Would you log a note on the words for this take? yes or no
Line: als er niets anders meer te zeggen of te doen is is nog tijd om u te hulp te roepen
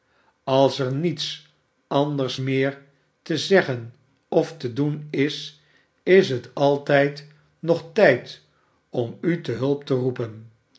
yes